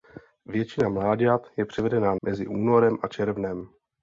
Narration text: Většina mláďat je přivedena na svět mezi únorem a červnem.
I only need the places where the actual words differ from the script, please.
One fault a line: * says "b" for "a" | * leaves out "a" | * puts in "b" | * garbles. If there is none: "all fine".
* leaves out "na svět"